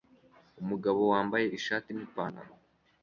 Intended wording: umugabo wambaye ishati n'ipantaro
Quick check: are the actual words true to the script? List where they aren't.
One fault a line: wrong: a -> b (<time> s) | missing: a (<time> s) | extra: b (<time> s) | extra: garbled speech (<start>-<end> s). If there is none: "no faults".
no faults